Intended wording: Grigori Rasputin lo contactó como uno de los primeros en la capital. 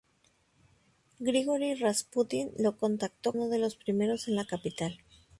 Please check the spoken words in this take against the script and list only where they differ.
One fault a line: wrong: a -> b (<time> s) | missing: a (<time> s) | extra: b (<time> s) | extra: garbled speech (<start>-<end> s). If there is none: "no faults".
missing: como (3.4 s)